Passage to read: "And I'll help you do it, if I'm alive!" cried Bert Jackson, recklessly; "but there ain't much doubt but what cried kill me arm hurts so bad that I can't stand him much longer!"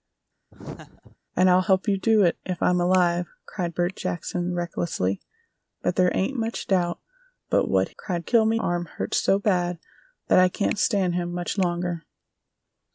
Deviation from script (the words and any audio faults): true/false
true